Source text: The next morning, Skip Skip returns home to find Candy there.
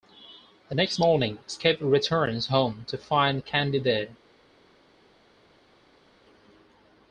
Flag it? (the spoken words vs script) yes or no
yes